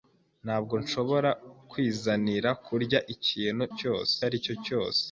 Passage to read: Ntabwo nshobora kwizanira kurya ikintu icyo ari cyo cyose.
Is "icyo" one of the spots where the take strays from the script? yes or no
yes